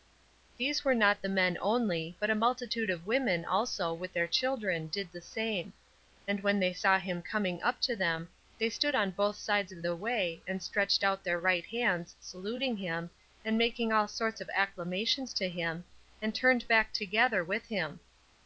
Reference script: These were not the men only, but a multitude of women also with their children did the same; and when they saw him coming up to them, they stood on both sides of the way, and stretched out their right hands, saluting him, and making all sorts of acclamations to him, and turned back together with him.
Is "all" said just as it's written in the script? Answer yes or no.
yes